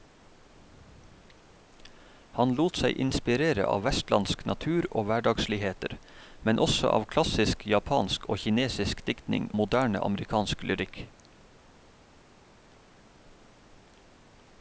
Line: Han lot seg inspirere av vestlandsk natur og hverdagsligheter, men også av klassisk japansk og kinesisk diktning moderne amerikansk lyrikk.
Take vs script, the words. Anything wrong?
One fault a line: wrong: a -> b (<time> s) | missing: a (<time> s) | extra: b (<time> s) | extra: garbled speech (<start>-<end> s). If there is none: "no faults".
no faults